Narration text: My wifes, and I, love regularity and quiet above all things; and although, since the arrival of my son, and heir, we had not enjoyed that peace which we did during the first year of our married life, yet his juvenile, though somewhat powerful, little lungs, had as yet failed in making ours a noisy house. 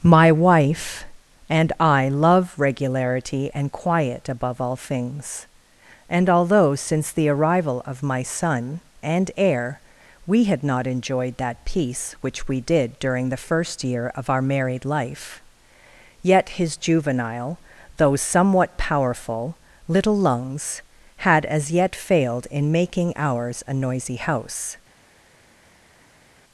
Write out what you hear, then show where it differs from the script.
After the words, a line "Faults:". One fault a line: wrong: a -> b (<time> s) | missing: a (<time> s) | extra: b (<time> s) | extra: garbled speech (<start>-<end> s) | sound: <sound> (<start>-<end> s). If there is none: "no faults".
My wife, and I, love regularity and quiet above all things; and although, since the arrival of my son, and heir, we had not enjoyed that peace which we did during the first year of our married life, yet his juvenile, though somewhat powerful, little lungs, had as yet failed in making ours a noisy house.
Faults:
wrong: wifes -> wife (0.3 s)